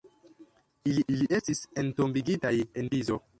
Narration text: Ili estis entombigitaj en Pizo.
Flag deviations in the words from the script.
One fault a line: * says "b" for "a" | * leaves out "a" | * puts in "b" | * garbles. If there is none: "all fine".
* puts in "ili"